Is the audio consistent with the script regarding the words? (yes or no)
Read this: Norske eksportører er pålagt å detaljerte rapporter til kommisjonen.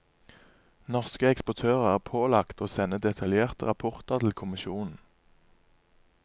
no